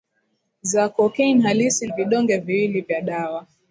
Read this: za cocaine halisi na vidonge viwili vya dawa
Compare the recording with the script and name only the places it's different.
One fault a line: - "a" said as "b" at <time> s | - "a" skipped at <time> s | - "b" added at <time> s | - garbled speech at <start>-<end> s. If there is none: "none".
- "na" skipped at 1.9 s